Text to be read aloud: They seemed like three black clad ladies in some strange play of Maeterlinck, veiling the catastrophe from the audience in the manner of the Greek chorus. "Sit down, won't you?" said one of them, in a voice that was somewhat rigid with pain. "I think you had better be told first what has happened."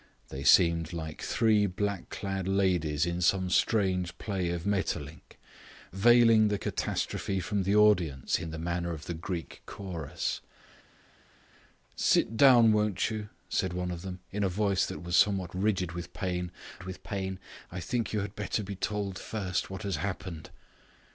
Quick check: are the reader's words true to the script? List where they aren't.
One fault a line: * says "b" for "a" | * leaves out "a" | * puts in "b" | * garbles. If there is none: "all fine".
* puts in "with pain"